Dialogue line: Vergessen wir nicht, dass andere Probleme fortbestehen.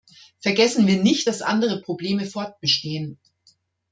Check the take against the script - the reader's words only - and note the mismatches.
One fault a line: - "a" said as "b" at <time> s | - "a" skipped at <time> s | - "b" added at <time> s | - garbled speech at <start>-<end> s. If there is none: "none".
none